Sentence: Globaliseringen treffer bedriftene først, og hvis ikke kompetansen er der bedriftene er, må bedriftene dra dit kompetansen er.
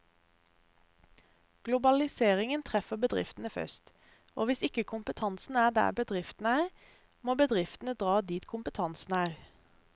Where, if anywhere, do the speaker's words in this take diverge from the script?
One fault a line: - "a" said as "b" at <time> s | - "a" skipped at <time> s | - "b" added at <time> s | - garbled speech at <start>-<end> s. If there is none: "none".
none